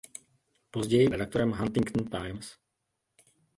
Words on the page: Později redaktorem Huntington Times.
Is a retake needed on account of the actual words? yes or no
no